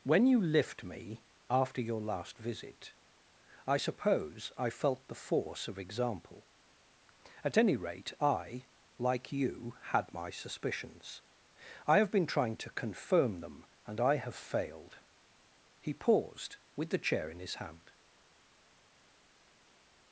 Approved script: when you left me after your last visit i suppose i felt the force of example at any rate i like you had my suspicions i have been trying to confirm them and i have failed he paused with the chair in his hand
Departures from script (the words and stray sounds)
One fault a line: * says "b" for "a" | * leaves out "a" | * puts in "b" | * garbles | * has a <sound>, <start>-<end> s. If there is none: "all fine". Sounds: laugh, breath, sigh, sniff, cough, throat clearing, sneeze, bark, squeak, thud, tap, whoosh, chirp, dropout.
* says "lift" for "left"